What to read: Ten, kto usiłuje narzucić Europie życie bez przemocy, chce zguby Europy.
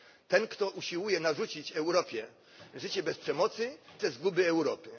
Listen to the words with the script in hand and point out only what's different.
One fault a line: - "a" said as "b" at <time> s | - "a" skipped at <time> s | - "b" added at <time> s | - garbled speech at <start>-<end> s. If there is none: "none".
none